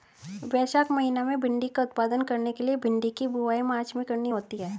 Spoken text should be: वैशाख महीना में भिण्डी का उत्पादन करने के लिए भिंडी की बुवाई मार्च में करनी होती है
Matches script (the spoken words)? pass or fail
pass